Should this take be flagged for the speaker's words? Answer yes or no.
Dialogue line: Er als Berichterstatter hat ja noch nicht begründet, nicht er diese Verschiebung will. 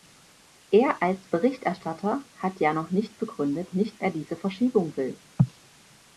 no